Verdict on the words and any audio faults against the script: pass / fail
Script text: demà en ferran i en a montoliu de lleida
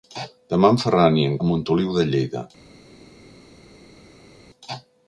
pass